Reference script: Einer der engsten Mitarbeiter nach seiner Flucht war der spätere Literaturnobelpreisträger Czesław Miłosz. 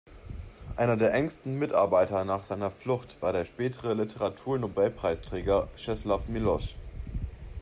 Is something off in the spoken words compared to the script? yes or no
no